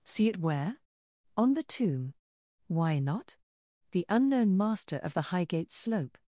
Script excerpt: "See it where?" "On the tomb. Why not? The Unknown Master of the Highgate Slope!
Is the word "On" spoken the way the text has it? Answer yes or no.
yes